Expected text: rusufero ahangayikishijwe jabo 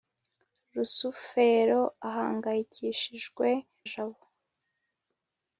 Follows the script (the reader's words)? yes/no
yes